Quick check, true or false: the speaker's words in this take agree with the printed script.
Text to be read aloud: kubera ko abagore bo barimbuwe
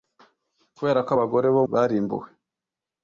true